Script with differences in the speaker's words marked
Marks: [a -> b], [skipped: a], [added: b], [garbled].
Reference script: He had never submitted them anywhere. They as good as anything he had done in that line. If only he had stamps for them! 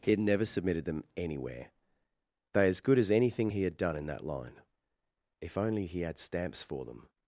He had never submitted them anywhere. They as good as anything he had done in that line. If only he had stamps for them!